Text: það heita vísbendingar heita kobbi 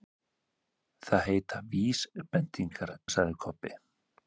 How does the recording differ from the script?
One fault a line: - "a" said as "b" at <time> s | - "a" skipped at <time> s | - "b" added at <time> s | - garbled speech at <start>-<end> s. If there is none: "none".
- "heita" said as "sagði" at 3.2 s